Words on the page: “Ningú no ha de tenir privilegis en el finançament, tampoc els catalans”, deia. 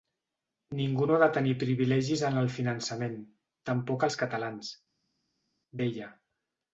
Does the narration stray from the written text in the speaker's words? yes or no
no